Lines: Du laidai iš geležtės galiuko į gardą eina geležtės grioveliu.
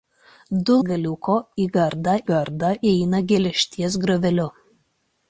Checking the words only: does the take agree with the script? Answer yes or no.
no